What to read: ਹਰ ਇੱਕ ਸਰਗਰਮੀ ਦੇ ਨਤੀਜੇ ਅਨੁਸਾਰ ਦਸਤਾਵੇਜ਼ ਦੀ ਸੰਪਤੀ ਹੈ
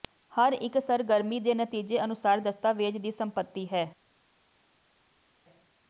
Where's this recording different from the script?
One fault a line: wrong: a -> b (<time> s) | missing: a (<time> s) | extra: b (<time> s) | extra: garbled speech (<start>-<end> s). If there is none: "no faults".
no faults